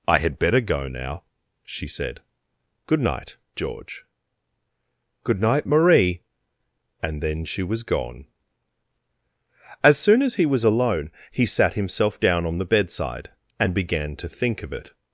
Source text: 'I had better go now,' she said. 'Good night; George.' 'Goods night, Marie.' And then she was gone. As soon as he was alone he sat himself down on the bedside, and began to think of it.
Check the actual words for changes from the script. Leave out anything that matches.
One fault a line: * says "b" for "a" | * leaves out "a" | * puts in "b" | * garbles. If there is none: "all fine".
* says "Good" for "Goods"